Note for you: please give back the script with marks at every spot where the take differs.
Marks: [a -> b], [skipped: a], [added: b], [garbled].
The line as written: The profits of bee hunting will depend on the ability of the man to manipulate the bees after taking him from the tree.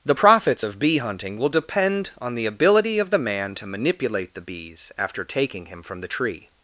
The profits of bee hunting will depend on the ability of the man to manipulate the bees after taking him from the tree.